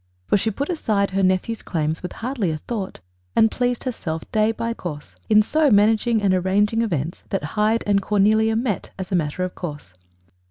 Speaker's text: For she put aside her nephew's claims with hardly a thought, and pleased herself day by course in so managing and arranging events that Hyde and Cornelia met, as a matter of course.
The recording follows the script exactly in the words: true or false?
true